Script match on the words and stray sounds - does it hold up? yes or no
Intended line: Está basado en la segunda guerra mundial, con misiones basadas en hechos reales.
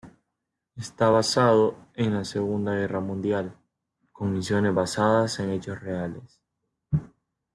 yes